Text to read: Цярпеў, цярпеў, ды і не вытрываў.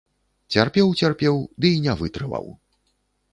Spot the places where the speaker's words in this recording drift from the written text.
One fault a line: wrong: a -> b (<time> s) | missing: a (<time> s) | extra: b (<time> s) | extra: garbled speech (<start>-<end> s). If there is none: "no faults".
no faults